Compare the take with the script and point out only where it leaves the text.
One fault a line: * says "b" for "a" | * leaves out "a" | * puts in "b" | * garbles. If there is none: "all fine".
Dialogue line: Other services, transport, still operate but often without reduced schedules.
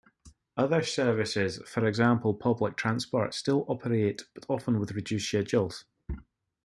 * puts in "for example public"
* says "with" for "without"